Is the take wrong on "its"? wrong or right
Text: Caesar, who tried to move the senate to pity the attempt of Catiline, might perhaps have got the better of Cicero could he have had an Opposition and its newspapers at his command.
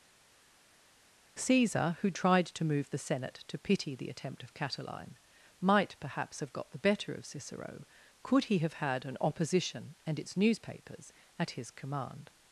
right